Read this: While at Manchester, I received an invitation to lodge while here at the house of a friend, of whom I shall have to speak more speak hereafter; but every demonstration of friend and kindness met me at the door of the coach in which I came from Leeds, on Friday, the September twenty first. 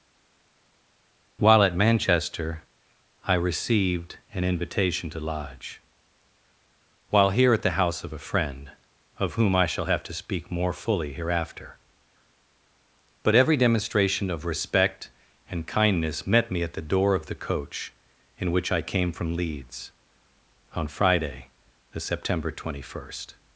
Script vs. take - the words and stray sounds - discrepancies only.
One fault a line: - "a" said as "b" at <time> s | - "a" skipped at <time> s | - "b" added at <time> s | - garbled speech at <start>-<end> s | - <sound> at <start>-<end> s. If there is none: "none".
- "speak" said as "fully" at 10.7 s
- "friend" said as "respect" at 14.5 s